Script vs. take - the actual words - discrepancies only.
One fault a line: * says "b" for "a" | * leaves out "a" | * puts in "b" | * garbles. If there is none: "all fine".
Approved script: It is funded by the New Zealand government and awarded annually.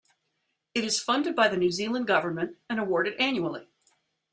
all fine